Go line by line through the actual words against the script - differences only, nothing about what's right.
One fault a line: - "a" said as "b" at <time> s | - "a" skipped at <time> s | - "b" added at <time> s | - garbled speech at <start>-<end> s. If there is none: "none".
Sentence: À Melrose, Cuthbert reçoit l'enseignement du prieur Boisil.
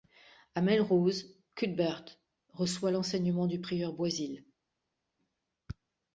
none